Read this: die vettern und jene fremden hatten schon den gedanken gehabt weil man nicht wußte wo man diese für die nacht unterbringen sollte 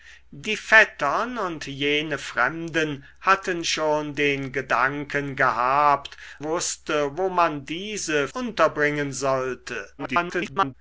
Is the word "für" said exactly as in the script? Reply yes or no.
no